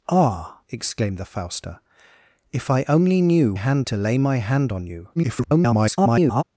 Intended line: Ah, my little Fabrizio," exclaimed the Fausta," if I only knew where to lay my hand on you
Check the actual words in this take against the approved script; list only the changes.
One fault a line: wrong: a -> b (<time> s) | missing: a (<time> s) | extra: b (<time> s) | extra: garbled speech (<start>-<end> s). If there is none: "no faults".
missing: my little Fabrizio (0.6 s)
wrong: where -> hand (3.5 s)
extra: garbled speech (5.2-6.4 s)